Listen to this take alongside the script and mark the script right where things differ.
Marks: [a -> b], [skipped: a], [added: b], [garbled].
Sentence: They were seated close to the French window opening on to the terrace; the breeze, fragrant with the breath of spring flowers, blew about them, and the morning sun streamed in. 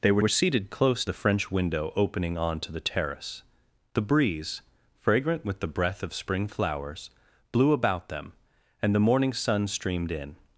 They were [added: were] seated close [skipped: to] the French window opening on to the terrace; the breeze, fragrant with the breath of spring flowers, blew about them, and the morning sun streamed in.